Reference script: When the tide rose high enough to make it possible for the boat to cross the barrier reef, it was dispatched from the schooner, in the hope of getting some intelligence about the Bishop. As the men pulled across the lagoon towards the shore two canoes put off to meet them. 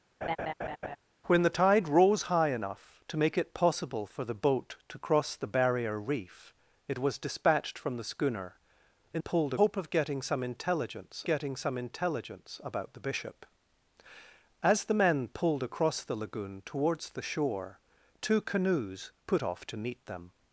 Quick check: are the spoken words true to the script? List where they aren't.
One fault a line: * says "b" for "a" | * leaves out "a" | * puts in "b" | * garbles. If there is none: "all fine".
* says "pulled" for "the"
* puts in "getting some intelligence"